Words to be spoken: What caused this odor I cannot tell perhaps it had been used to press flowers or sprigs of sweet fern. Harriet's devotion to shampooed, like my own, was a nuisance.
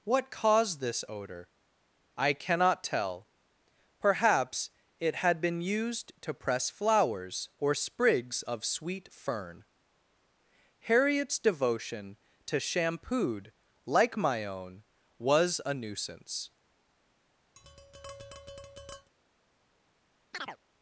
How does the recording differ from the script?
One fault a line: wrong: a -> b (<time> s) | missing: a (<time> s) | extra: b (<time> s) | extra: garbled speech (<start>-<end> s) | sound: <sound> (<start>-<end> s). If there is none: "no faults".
sound: tap (17.6-19.1 s)
sound: chirp (20.3-20.6 s)